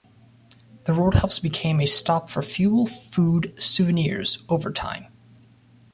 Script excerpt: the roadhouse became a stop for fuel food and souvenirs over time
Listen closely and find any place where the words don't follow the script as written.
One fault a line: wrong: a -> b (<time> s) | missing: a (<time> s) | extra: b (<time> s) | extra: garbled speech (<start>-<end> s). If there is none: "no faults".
missing: and (3.5 s)